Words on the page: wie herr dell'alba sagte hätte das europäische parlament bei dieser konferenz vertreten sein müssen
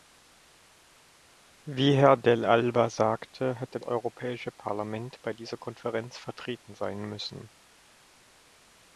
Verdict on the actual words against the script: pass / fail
fail